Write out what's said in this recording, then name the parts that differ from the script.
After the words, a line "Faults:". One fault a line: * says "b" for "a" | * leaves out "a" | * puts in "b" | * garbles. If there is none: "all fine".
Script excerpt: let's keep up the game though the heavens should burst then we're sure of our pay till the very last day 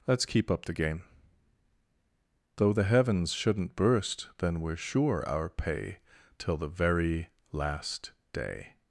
let's keep up the game though the heavens shouldn't burst then we're sure our pay till the very last day
Faults:
* says "shouldn't" for "should"
* leaves out "of"